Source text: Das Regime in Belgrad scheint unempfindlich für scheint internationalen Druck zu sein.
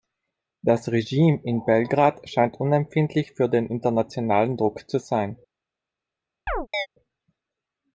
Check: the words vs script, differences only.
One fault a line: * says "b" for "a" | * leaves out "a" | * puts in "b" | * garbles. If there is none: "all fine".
* says "den" for "scheint"